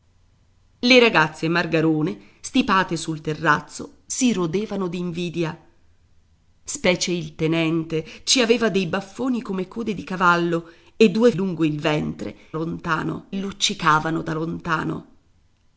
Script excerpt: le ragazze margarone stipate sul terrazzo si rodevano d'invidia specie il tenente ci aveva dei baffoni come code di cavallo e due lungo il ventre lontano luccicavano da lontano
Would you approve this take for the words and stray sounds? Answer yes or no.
yes